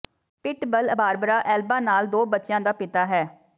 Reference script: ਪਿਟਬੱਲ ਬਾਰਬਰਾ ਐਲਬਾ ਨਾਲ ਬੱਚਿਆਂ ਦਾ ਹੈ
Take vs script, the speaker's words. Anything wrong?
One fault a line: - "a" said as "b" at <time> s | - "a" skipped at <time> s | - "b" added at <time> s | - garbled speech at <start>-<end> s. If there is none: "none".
- "ਦੋ" added at 2.1 s
- "ਪਿਤਾ" added at 2.7 s